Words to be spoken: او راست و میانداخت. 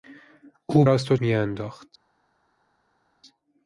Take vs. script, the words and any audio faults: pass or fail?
pass